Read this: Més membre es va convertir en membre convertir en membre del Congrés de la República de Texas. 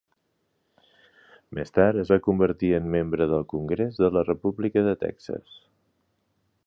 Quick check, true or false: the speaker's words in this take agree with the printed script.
false